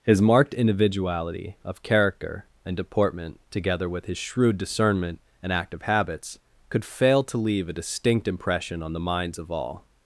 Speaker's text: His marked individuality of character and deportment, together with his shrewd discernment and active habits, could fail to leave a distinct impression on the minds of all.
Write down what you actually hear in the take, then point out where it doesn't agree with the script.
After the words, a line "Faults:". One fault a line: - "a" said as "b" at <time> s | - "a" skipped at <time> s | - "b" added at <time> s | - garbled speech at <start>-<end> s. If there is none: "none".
His marked individuality of character and deportment, together with his shrewd discernment and active habits, could fail to leave a distinct impression on the minds of all.
Faults:
none